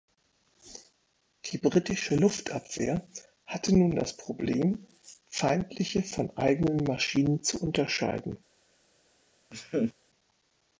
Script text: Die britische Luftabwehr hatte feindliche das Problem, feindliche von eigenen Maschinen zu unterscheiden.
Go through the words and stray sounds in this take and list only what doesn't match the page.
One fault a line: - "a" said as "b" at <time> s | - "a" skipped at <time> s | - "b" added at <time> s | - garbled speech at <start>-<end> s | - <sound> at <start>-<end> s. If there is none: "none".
- "feindliche" said as "nun" at 3.8 s
- laugh at 9.5-9.9 s